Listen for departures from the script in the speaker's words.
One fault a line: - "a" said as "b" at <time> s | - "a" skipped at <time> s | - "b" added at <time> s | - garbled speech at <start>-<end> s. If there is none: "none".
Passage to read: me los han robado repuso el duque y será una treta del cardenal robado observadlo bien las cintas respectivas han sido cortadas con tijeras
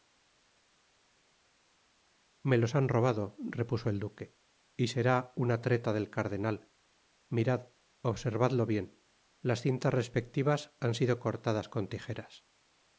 - "robado" said as "mirad" at 7.3 s